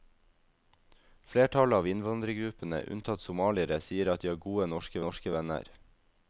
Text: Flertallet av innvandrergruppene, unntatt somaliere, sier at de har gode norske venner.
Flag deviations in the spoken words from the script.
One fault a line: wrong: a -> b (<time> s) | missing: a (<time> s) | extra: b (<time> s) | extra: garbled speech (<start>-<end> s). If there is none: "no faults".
extra: norske (5.0 s)